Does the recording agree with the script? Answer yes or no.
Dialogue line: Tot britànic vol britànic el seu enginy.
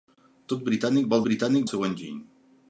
yes